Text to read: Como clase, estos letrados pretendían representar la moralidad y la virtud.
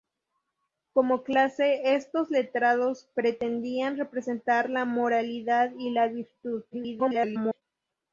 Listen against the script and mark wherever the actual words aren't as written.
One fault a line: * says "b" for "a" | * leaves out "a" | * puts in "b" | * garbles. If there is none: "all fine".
* garbles